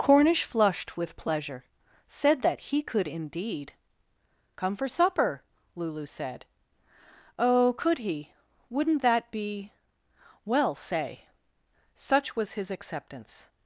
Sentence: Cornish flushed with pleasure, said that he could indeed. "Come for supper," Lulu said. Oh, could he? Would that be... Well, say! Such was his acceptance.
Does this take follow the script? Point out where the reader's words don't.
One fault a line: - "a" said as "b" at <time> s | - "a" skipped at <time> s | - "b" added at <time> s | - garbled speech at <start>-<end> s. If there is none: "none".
- "Would" said as "Wouldn't" at 8.7 s